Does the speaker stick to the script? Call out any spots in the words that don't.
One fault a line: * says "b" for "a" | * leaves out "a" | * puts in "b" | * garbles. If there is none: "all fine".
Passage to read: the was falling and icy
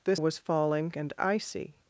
all fine